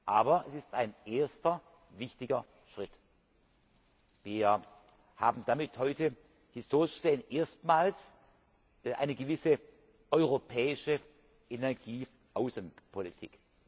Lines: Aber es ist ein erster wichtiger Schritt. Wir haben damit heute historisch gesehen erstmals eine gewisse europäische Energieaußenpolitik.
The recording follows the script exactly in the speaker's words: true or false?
true